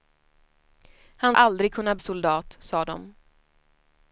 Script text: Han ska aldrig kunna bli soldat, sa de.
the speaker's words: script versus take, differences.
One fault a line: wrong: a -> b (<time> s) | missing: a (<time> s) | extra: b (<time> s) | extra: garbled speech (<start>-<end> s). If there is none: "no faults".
missing: ska (1.4 s)
missing: bli (2.0 s)